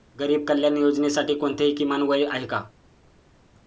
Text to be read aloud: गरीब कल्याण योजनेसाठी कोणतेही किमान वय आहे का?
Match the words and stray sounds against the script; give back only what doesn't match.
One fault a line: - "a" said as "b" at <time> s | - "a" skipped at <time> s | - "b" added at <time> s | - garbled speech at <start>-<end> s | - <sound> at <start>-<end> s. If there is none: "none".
none